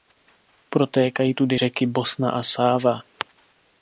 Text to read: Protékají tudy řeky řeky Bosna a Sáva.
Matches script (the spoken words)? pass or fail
fail